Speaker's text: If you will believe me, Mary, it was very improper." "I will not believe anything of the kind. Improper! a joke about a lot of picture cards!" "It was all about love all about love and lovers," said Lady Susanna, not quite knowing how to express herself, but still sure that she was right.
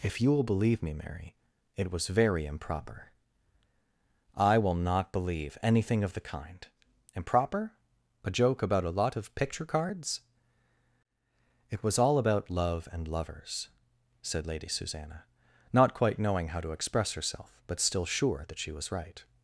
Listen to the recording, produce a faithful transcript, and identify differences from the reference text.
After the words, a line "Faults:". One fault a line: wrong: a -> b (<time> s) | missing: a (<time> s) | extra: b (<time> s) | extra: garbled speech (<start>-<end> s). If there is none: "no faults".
If you will believe me, Mary, it was very improper." "I will not believe anything of the kind. Improper! a joke about a lot of picture cards!" "It was all about love and lovers," said Lady Susanna, not quite knowing how to express herself, but still sure that she was right.
Faults:
missing: all about love (12.9 s)